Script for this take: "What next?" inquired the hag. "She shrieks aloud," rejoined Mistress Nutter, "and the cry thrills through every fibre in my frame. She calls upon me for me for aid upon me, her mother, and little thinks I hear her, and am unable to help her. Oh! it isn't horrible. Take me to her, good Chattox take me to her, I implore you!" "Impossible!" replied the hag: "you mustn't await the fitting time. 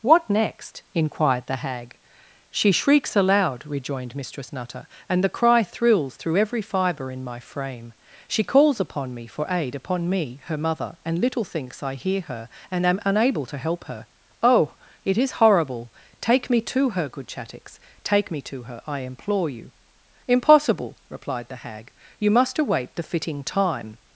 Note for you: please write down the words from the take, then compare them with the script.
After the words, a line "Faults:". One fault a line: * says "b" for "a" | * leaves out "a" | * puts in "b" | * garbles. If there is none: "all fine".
"What next?" inquired the hag. "She shrieks aloud," rejoined Mistress Nutter, "and the cry thrills through every fibre in my frame. She calls upon me for aid upon me, her mother, and little thinks I hear her, and am unable to help her. Oh! it is horrible. Take me to her, good Chattox take me to her, I implore you!" "Impossible!" replied the hag: "you must await the fitting time.
Faults:
* leaves out "me for"
* says "is" for "isn't"
* says "must" for "mustn't"